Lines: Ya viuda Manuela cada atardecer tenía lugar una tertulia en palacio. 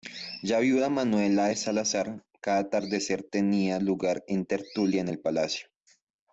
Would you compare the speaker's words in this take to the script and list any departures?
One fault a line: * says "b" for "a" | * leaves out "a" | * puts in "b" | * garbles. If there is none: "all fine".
* puts in "de Salazar"
* puts in "el"